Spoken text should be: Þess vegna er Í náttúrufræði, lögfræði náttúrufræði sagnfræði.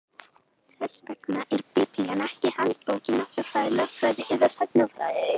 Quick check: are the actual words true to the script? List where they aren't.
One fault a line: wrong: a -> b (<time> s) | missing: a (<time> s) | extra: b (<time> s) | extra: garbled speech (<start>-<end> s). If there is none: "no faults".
extra: Biblían ekki handbók (1.8 s)
wrong: náttúrufræði -> eða (4.4 s)